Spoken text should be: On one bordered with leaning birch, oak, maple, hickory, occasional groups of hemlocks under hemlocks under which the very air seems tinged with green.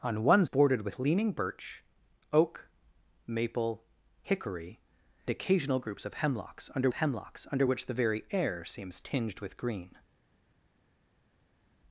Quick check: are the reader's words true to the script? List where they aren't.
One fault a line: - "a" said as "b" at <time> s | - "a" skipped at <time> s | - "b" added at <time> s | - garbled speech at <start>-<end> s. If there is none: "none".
none